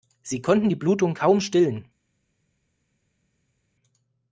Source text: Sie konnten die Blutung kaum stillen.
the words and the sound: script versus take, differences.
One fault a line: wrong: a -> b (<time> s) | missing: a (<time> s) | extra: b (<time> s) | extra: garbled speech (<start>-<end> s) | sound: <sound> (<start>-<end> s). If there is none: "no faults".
no faults